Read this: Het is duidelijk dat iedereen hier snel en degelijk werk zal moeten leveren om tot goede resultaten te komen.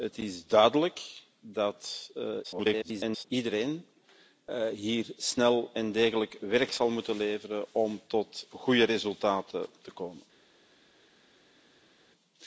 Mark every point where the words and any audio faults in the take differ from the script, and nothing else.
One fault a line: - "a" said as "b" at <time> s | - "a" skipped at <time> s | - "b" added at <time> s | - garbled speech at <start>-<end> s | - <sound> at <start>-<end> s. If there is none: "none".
- garbled speech at 2.4-3.2 s